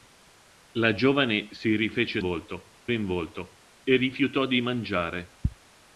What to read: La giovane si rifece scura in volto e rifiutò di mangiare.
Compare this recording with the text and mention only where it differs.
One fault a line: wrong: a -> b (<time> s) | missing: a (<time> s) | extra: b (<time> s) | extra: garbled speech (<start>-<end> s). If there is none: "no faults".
wrong: scura -> volto (2.2 s)